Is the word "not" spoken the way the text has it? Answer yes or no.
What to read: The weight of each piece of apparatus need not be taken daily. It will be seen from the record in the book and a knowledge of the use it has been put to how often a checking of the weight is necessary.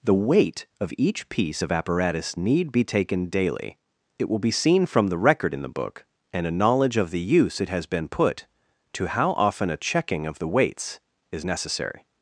no